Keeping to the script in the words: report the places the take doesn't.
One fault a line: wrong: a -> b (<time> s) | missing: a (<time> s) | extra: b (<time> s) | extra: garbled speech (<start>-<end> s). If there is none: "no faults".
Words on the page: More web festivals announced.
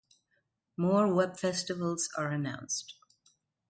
extra: are (2.2 s)